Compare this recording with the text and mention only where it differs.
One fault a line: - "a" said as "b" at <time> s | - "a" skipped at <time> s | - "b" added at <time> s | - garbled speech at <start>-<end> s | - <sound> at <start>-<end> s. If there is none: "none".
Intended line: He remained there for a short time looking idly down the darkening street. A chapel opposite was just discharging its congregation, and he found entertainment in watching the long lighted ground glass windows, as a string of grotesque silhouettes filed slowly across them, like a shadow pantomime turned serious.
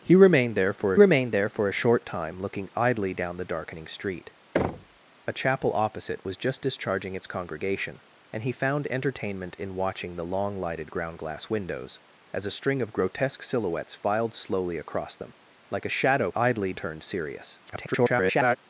- "remained there for" added at 0.9 s
- thud at 4.5-5.0 s
- "pantomime" said as "idly" at 16.3 s
- garbled speech at 17.7-18.6 s